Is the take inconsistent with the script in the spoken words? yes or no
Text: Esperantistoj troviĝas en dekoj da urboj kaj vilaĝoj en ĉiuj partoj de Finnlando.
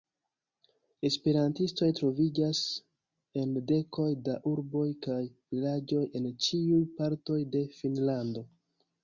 no